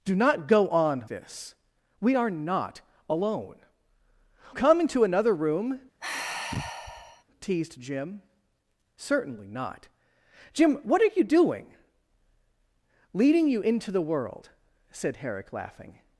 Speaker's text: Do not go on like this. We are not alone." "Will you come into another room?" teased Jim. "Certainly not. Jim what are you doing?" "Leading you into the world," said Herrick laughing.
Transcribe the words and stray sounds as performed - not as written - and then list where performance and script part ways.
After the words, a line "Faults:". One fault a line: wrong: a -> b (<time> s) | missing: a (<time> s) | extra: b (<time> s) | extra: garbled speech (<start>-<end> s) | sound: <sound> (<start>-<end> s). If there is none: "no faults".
Do not go on this. We are not alone." "Come into another room?" teased Jim. "Certainly not. Jim what are you doing?" "Leading you into the world," said Herrick laughing.
Faults:
missing: like (1.1 s)
missing: Will you (3.6 s)
sound: sigh (6.0-7.2 s)